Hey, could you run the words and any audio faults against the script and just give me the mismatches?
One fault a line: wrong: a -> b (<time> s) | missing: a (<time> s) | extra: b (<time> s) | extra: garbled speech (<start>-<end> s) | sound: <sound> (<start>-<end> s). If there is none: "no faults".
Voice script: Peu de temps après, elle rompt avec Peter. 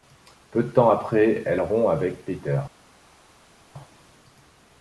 no faults